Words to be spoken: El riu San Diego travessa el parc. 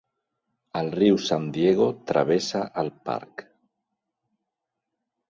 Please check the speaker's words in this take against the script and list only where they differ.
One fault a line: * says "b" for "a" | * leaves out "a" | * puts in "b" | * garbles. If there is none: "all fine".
all fine